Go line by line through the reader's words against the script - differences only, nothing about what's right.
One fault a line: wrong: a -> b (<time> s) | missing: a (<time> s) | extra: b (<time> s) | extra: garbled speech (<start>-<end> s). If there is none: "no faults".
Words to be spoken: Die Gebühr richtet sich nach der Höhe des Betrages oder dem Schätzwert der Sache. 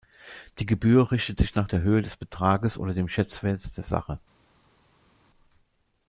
no faults